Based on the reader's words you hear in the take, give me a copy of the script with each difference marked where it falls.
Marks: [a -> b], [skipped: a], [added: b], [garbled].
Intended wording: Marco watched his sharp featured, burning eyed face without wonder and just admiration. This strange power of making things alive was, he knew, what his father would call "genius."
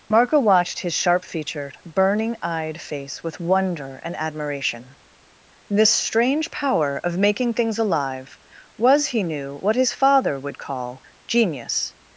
Marco watched his sharp featured, burning eyed face [without -> with] wonder and [skipped: just] admiration. This strange power of making things alive was, he knew, what his father would call "genius."